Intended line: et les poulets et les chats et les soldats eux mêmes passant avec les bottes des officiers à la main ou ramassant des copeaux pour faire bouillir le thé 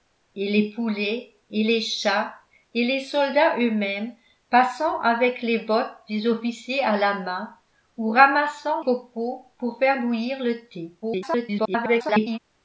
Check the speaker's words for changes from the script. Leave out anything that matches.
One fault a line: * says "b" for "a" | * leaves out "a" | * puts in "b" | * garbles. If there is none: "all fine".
* leaves out "des"
* garbles